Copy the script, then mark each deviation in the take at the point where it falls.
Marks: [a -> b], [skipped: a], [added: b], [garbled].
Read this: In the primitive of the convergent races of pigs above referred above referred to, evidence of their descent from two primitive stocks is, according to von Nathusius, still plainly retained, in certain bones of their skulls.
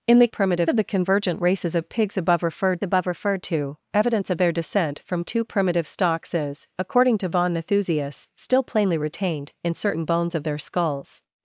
In the primitive of the convergent races of pigs above referred above referred to, evidence of their descent from two primitive stocks is, according to von Nathusius, still plainly retained, in certain bones of their skulls.